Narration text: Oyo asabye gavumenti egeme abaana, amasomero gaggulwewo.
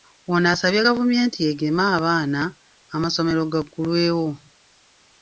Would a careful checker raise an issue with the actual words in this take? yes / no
yes